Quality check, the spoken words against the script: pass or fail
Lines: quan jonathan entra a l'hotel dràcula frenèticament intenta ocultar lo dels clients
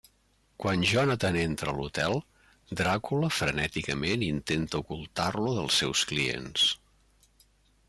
fail